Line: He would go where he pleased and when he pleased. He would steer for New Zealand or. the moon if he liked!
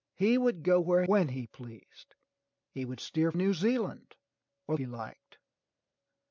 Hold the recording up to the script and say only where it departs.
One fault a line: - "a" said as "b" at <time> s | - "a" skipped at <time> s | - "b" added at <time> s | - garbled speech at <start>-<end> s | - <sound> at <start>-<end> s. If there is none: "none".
- "he pleased and" skipped at 1.0 s
- "for" skipped at 3.3 s
- "the moon if" skipped at 4.7 s